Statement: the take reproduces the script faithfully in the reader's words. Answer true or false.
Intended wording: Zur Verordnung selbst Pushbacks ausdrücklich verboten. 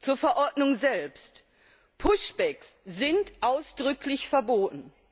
false